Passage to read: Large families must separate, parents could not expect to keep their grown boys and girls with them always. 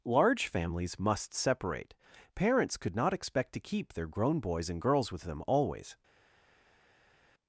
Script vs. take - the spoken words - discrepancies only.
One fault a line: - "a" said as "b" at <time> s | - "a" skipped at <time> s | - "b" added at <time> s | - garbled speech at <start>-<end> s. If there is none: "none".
none